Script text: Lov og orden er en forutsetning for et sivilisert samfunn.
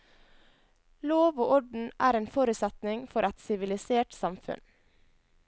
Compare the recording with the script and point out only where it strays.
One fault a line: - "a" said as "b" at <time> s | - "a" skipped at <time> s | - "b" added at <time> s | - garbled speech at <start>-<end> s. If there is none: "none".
none